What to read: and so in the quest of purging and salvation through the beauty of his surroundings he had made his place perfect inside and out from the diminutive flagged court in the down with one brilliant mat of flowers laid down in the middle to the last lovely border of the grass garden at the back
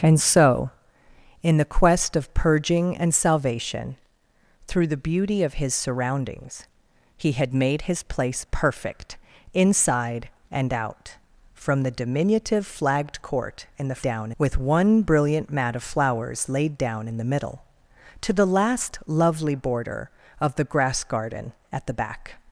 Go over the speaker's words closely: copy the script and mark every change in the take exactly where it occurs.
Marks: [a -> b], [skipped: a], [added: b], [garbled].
and so in the quest of purging and salvation through the beauty of his surroundings he had made his place perfect inside and out from the diminutive flagged court in the down with one brilliant mat of flowers laid down in the middle to the last lovely border of the grass garden at the back